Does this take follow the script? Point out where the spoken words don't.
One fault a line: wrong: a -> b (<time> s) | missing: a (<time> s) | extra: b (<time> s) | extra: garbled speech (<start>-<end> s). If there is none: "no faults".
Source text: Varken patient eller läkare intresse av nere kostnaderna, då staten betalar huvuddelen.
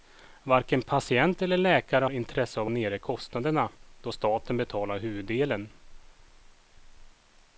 no faults